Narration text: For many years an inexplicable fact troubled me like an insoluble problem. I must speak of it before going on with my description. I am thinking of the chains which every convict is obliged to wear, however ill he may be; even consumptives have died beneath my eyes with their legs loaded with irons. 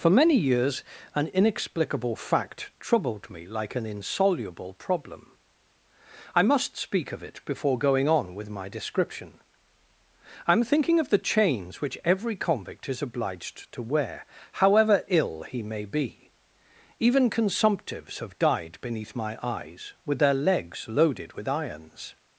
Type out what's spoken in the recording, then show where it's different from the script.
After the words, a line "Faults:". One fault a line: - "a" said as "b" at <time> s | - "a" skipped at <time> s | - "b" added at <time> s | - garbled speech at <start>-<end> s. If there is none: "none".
For many years an inexplicable fact troubled me like an insoluble problem. I must speak of it before going on with my description. I am thinking of the chains which every convict is obliged to wear, however ill he may be; even consumptives have died beneath my eyes with their legs loaded with irons.
Faults:
none